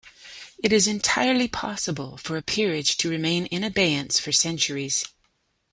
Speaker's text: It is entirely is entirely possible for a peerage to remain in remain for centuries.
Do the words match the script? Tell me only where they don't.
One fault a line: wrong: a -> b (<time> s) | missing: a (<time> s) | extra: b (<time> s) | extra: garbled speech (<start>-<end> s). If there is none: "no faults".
missing: is entirely (1.5 s)
wrong: remain -> abeyance (3.6 s)